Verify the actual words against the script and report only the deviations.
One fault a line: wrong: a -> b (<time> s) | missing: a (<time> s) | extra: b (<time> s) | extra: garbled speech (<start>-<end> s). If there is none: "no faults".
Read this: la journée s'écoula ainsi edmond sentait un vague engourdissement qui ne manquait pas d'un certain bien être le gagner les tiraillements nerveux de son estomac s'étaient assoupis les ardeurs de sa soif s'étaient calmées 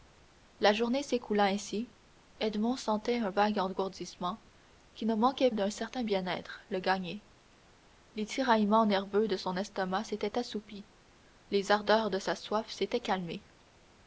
missing: pas (5.5 s)